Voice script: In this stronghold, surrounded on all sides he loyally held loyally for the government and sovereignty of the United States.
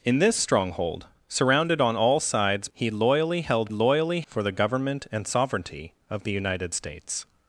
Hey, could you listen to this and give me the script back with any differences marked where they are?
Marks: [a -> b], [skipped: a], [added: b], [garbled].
In this stronghold, surrounded on all sides he loyally held loyally for the government and sovereignty of the United States.